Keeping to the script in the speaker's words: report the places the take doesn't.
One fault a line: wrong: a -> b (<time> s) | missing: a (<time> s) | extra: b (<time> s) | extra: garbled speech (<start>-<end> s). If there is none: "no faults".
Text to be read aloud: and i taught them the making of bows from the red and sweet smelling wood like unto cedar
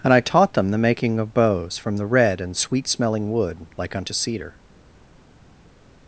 no faults